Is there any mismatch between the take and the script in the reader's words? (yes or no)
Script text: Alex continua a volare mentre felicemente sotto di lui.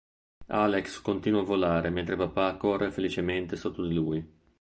yes